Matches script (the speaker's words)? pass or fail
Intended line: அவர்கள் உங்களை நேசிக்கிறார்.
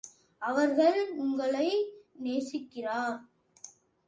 pass